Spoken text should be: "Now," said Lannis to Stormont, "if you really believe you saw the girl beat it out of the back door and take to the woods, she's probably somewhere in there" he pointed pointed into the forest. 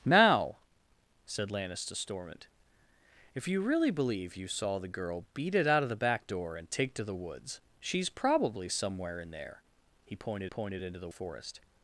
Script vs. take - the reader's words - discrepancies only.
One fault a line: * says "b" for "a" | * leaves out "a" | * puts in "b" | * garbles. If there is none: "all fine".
all fine